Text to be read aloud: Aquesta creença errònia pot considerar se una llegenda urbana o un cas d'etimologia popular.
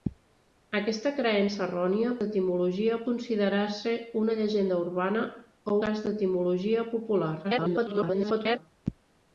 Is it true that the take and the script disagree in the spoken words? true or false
true